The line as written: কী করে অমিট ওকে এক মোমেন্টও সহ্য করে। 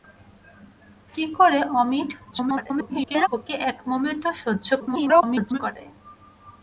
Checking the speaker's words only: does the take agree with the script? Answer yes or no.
no